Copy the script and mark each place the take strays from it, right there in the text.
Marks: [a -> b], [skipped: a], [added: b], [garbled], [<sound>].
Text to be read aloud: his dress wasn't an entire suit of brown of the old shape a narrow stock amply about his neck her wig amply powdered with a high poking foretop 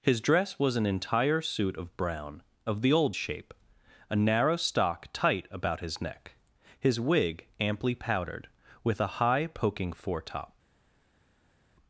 his dress [wasn't -> was] an entire suit of brown of the old shape a narrow stock [amply -> tight] about his neck [her -> his] wig amply powdered with a high poking foretop